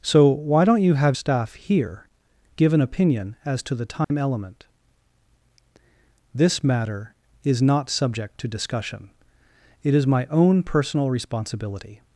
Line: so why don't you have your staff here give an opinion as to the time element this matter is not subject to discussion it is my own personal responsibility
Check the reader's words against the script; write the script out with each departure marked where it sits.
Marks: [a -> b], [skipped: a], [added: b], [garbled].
so why don't you have [skipped: your] staff here give an opinion as to the time element this matter is not subject to discussion it is my own personal responsibility